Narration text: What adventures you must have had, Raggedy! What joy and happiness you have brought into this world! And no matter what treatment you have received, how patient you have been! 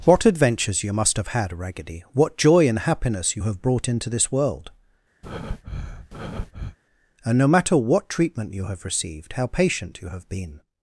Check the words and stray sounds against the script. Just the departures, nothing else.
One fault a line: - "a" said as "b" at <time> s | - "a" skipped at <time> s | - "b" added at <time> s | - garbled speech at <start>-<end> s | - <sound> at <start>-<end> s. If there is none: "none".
- breath at 5.2-6.8 s